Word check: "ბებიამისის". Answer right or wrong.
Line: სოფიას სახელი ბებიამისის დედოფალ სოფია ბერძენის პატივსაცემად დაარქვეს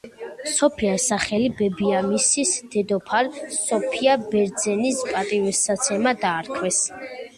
right